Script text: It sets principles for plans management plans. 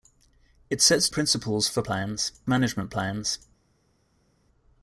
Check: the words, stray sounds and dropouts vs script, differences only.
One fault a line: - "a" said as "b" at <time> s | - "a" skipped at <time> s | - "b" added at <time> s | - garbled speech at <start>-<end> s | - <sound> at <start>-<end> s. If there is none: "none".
none